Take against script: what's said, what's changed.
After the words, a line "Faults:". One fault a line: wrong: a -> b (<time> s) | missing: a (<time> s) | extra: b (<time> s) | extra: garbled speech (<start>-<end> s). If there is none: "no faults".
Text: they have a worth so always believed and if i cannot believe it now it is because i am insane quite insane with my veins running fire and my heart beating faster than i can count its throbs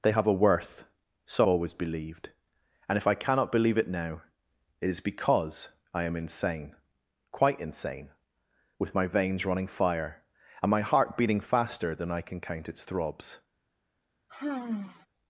they have a worth so always believed and if i cannot believe it now it is because i am insane quite insane with my veins running fire and my heart beating faster than i can count its throbs
Faults:
no faults